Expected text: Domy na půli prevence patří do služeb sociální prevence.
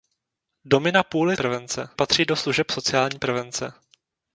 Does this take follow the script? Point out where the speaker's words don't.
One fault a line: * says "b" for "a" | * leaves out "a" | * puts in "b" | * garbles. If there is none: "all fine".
all fine